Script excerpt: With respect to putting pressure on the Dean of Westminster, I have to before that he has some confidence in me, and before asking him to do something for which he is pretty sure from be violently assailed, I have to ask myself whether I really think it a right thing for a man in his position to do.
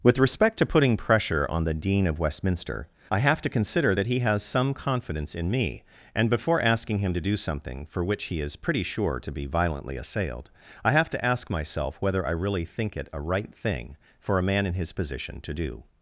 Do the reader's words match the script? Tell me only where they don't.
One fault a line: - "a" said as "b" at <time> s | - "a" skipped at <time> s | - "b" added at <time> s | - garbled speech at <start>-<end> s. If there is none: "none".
- "before" said as "consider" at 3.5 s
- "from" said as "to" at 9.2 s